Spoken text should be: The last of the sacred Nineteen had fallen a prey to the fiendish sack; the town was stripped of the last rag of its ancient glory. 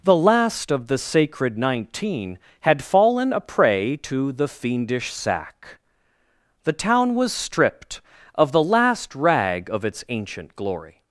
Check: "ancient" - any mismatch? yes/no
no